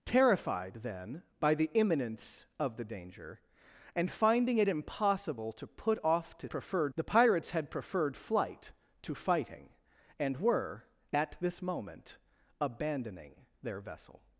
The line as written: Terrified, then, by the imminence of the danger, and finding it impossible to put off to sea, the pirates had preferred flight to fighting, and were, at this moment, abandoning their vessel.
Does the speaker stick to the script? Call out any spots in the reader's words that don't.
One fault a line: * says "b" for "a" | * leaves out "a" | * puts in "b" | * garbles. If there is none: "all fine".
* says "preferred" for "sea"